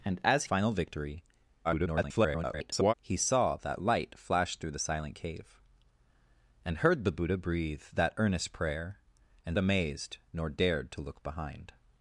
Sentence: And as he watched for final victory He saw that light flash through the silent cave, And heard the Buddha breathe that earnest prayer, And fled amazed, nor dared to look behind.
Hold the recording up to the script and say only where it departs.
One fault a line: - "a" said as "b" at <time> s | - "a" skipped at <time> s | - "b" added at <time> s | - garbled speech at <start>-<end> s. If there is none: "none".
- "he watched for" skipped at 0.5 s
- garbled speech at 1.6-2.9 s
- "fled" skipped at 9.6 s